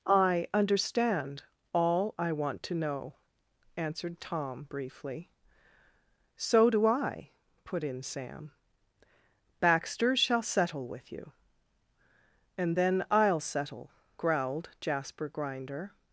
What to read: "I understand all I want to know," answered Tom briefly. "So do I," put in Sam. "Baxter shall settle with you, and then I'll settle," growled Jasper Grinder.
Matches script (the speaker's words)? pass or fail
pass